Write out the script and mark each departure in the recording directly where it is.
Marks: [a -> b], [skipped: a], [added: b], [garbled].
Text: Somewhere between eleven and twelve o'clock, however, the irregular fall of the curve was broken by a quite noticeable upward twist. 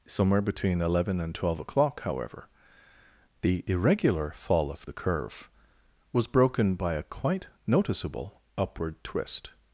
Somewhere between eleven and twelve o'clock, however, the irregular fall of the curve was broken by a quite noticeable upward twist.